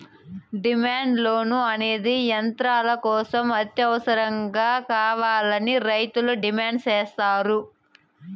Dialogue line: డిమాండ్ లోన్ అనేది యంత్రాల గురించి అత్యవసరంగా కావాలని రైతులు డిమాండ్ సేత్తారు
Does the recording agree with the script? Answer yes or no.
no